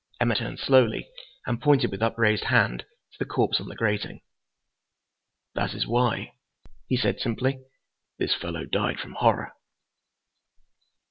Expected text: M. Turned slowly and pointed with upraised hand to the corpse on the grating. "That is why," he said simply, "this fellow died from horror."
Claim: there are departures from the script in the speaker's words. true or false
false